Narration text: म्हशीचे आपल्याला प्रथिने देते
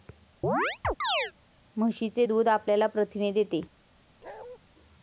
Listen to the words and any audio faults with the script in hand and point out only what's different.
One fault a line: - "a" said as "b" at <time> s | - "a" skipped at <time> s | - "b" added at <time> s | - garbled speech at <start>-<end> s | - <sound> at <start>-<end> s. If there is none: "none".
- chirp at 0.4-1.3 s
- "दूध" added at 2.2 s
- bark at 4.2-4.6 s